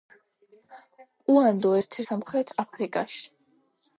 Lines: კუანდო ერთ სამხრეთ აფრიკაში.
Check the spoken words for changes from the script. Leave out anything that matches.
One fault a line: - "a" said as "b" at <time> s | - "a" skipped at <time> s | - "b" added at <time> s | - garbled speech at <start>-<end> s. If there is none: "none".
none